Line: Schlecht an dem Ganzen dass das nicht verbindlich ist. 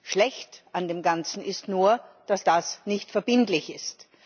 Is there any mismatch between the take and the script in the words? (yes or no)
yes